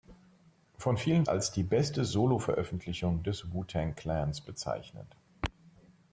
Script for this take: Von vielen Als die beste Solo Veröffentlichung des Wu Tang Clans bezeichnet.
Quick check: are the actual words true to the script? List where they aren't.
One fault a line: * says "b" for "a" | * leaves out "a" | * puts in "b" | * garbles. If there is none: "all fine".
all fine